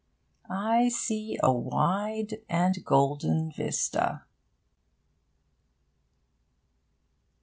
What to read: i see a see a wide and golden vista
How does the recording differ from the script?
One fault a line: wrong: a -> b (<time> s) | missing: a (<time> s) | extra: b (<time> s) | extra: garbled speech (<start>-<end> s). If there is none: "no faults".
missing: see a (1.5 s)